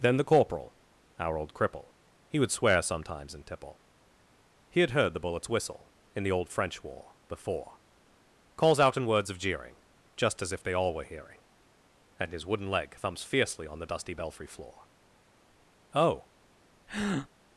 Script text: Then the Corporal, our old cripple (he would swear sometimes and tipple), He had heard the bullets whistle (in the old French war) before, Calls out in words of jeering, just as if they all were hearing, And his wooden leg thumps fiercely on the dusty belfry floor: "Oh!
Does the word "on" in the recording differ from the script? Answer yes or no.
no